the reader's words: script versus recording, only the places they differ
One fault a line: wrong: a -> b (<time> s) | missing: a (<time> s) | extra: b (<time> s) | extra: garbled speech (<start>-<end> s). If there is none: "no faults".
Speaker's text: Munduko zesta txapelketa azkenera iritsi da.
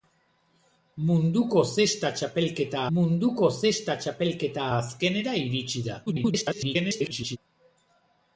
extra: munduko zesta txapelketa (3.0 s)
extra: garbled speech (6.1-7.4 s)